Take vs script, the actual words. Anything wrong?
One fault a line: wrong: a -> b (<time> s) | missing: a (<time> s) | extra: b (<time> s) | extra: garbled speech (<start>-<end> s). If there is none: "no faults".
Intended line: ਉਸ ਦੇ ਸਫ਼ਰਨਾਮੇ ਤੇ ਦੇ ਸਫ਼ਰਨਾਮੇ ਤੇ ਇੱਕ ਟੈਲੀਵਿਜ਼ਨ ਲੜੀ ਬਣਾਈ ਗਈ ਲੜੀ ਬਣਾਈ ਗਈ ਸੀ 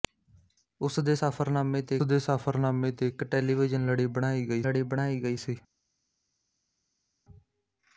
no faults